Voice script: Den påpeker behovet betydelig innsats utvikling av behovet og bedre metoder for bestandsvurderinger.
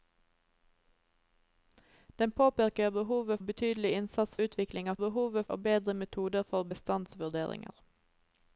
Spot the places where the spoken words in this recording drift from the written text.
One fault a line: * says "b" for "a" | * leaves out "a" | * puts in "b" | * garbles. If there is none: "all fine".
all fine